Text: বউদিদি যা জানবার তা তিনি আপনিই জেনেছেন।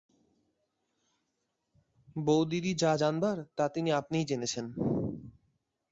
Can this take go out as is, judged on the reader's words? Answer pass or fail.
pass